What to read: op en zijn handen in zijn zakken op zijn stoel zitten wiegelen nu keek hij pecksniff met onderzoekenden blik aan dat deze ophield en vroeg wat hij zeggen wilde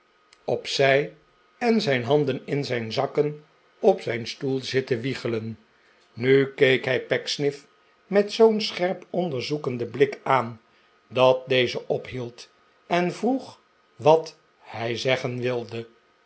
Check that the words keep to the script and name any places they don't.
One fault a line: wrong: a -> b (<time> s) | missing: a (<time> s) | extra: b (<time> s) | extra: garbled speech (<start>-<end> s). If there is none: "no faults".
extra: zij (0.7 s)
extra: zoo'n scherp (8.3 s)